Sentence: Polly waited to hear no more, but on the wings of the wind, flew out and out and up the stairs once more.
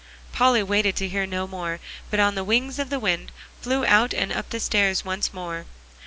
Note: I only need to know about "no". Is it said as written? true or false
true